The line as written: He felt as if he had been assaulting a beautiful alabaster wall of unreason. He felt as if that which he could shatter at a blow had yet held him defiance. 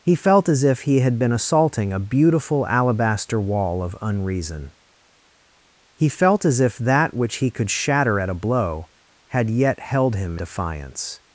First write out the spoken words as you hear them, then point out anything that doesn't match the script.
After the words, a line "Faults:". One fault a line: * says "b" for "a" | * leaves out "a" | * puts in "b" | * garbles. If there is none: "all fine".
He felt as if he had been assaulting a beautiful alabaster wall of unreason. He felt as if that which he could shatter at a blow had yet held him defiance.
Faults:
all fine